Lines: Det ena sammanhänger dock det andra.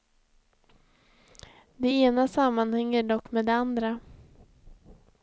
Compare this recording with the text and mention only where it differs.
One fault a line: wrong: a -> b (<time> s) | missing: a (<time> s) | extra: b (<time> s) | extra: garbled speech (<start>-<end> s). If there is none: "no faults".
extra: med (3.3 s)